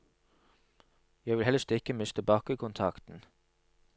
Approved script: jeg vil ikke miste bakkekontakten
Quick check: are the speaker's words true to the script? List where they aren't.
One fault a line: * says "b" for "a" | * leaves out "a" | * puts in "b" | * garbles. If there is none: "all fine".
* puts in "helst"